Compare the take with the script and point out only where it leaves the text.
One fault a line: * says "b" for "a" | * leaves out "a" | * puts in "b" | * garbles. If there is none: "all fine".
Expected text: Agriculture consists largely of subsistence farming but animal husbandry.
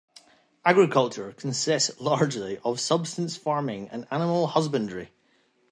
* says "and" for "but"